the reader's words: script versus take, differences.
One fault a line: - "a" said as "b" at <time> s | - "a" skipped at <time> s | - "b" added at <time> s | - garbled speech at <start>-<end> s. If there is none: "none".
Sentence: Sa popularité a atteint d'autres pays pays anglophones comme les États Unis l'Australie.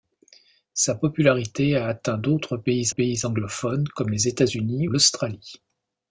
none